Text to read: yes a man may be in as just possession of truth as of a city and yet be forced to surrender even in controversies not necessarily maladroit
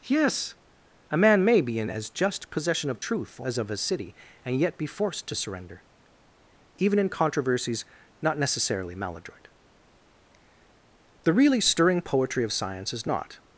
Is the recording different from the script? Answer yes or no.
yes